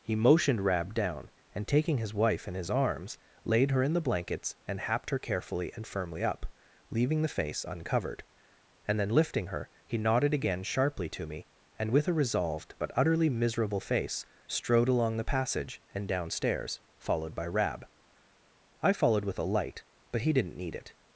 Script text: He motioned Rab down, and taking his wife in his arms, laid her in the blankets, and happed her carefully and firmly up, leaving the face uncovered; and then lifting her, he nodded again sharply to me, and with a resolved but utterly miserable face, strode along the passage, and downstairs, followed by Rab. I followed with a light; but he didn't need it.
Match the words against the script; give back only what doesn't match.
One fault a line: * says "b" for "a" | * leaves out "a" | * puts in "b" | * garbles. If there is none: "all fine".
all fine